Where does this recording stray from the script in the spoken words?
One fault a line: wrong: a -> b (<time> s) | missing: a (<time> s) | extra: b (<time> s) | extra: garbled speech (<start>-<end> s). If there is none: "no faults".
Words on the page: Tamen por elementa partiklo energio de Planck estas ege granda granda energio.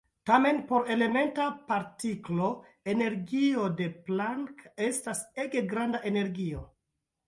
missing: granda (6.1 s)